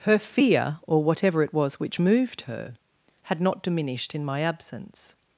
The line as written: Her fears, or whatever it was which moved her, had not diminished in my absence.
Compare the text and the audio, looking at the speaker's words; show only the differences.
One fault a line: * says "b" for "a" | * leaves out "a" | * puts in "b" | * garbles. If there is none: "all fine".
* says "fear" for "fears"